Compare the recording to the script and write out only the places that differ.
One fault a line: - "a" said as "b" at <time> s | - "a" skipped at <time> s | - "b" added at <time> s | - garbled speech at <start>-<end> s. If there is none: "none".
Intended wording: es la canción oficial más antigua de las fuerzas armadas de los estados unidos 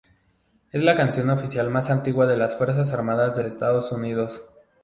- "los" skipped at 3.4 s